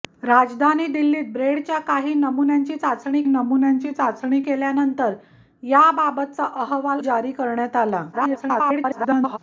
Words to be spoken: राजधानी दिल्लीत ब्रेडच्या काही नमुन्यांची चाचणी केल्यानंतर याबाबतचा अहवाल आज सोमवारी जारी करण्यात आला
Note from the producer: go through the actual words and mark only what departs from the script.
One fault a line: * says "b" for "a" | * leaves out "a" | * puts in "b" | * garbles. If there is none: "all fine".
* puts in "नमुन्यांची चाचणी"
* leaves out "आज सोमवारी"
* garbles